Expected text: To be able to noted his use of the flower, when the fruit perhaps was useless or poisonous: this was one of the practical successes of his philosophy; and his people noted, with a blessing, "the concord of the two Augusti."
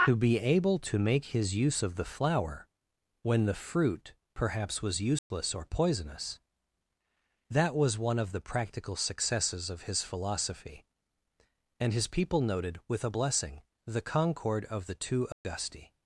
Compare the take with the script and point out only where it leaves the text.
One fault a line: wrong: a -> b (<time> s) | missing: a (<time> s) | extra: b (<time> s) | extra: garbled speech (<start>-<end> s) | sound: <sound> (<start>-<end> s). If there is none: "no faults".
wrong: noted -> make (1.0 s)
sound: dropout (5.2-5.3 s)
wrong: this -> that (7.5 s)
sound: dropout (15.3-15.4 s)